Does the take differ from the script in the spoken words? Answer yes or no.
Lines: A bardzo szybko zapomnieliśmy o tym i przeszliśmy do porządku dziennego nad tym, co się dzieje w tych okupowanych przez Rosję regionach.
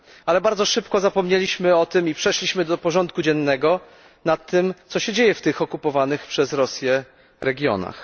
yes